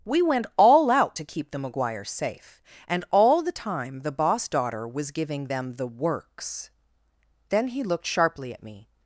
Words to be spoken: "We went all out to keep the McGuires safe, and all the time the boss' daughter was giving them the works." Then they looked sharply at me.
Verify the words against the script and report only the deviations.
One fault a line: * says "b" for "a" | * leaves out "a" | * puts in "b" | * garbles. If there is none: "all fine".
* says "he" for "they"